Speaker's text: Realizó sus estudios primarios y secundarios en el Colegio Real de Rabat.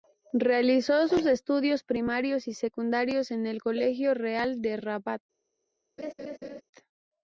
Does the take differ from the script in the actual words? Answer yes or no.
no